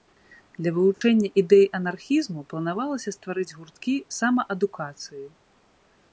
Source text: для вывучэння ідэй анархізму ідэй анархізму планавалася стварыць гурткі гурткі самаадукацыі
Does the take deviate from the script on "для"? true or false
false